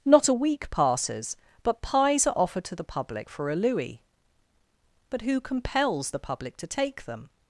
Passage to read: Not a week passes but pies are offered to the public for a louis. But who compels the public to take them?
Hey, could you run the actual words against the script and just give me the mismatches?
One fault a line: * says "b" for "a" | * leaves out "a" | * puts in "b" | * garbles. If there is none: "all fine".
all fine